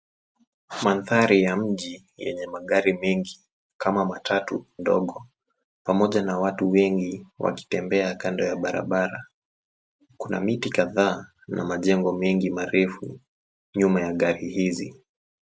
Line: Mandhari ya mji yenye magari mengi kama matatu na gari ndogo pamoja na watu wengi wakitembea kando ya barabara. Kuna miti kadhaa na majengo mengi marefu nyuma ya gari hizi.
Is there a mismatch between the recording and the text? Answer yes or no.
yes